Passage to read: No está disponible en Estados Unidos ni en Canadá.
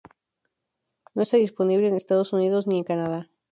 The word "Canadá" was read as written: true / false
true